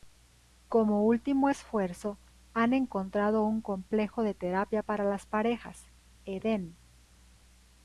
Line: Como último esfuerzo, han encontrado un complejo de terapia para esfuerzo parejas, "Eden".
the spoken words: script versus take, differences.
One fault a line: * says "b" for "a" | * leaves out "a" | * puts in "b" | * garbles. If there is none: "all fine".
* says "las" for "esfuerzo"